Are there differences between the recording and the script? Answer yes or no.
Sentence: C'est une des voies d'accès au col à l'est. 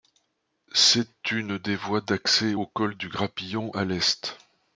yes